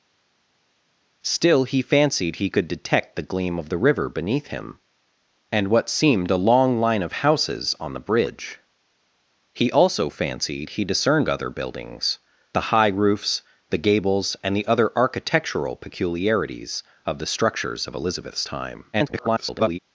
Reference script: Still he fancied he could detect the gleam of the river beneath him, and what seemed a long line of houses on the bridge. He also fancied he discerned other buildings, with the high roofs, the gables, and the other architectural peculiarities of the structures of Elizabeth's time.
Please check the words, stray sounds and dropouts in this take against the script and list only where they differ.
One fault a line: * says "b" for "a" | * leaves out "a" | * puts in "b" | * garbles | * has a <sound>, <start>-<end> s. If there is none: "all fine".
* leaves out "with"
* garbles